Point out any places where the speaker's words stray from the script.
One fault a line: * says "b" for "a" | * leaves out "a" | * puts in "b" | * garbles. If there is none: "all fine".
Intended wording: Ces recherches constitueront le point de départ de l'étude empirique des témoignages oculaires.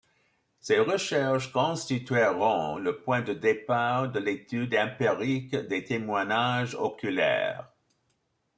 all fine